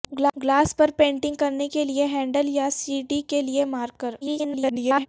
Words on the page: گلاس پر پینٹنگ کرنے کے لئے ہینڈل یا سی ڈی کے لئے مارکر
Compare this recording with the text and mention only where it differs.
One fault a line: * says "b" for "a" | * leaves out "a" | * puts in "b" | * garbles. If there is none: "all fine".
* garbles